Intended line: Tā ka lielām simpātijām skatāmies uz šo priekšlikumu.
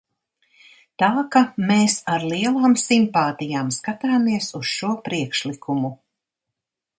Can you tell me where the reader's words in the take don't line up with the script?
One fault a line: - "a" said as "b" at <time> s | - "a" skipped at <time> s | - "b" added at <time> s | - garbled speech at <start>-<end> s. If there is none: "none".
- "mēs ar" added at 1.7 s